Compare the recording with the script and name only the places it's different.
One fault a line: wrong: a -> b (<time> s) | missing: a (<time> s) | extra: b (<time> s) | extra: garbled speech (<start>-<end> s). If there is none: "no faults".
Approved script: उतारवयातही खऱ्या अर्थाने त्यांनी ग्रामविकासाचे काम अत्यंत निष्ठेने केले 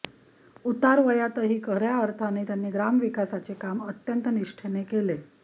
no faults